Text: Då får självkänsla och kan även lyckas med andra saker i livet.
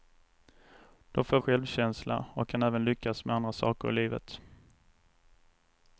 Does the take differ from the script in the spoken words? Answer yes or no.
no